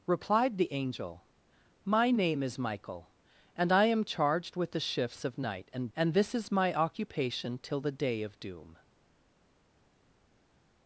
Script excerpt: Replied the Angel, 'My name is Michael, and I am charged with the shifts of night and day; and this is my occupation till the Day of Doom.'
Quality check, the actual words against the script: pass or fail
fail